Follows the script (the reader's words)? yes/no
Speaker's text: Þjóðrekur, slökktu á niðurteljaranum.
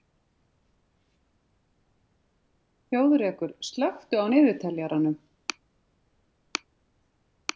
yes